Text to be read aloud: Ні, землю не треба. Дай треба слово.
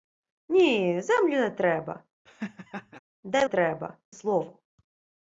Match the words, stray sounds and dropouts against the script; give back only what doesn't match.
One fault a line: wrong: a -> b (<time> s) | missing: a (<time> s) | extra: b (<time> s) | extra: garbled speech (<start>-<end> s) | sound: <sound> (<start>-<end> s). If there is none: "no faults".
sound: laugh (2.3-3.0 s)